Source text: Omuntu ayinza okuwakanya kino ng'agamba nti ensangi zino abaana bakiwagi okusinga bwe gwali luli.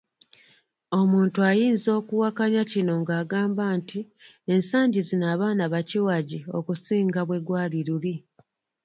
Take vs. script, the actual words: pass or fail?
pass